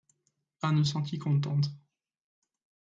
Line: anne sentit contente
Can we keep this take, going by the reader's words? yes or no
yes